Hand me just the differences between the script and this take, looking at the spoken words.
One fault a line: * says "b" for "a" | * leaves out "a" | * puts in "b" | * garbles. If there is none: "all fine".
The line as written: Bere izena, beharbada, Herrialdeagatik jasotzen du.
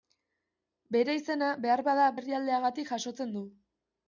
all fine